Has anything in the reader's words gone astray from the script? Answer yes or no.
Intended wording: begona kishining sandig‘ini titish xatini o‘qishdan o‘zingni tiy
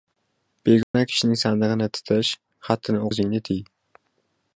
yes